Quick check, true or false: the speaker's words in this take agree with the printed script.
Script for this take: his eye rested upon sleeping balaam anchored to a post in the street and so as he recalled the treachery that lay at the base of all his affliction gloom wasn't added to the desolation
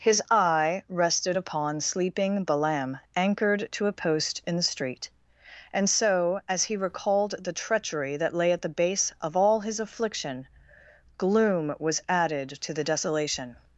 false